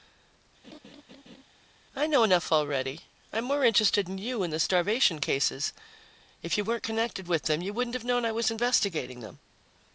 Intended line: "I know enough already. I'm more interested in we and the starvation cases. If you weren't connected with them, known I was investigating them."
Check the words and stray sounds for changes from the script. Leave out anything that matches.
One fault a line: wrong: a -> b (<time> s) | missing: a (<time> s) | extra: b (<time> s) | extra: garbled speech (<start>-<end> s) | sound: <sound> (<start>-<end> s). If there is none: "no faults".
sound: laugh (0.6-1.4 s)
wrong: we -> you (4.2 s)
extra: you wouldn't have (7.6 s)